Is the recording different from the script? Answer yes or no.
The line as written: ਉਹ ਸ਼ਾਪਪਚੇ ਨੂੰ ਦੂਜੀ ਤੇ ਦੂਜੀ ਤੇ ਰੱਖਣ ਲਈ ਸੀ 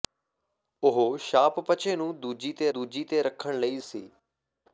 no